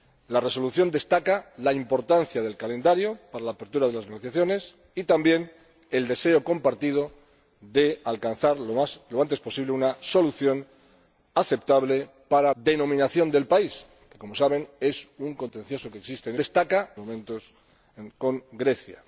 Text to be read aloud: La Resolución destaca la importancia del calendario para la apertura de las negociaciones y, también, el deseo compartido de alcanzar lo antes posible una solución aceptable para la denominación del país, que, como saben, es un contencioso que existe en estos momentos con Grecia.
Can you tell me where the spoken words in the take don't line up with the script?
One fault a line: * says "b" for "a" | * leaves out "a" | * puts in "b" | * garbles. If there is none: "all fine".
* leaves out "la"
* says "destaca" for "estos"